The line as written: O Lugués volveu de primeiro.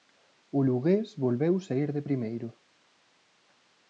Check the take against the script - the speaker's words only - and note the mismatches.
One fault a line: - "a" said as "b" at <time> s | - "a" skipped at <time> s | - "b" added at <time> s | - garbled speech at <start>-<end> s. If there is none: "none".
- "saír" added at 1.7 s